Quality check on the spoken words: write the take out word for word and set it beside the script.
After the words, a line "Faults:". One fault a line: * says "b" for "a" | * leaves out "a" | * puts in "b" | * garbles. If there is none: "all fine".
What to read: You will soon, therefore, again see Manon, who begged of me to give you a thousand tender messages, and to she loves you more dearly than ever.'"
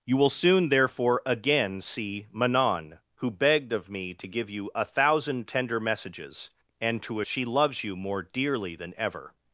You will soon, therefore, again see Manon, who begged of me to give you a thousand tender messages, and to she loves you more dearly than ever.'"
Faults:
all fine